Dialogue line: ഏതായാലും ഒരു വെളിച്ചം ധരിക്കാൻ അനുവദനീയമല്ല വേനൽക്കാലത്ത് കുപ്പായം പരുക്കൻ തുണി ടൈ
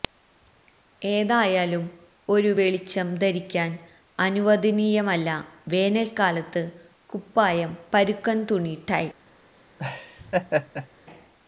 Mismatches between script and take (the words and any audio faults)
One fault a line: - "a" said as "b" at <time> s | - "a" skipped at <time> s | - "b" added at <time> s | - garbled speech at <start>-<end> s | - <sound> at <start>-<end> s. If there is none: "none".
- laugh at 9.8-10.9 s